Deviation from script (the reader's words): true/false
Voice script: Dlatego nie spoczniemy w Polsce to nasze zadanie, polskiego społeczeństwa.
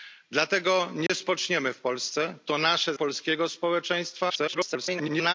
true